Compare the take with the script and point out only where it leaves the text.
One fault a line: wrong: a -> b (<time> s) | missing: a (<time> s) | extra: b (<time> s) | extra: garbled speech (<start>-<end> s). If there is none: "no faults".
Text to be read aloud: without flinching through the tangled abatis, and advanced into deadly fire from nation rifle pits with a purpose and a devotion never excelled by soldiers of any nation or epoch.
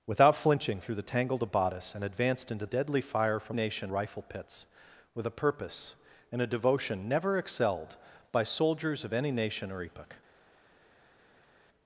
no faults